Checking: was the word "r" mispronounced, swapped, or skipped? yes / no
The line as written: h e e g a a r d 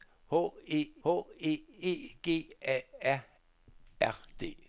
no